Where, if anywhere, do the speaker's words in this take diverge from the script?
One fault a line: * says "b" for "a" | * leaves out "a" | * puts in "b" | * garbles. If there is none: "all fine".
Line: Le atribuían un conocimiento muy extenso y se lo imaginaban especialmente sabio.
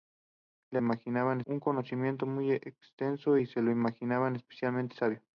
* says "imaginaban" for "atribuían"